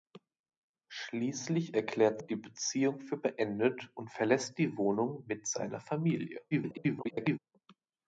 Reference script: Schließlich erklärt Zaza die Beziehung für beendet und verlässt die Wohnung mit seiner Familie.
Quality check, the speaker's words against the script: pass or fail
fail